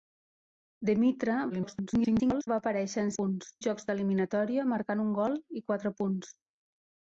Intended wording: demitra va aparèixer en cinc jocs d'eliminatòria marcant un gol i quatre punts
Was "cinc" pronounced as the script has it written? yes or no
no